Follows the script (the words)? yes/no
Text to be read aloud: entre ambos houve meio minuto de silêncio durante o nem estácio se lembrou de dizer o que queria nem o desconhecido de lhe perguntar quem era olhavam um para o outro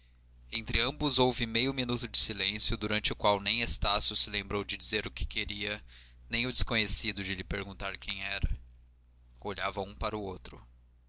no